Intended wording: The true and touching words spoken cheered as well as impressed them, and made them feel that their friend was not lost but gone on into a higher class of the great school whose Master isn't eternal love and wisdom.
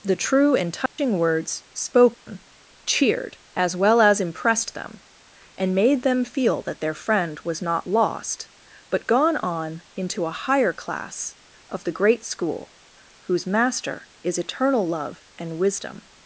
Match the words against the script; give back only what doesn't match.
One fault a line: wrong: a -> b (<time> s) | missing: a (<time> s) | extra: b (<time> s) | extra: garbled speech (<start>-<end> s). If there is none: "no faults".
wrong: isn't -> is (14.2 s)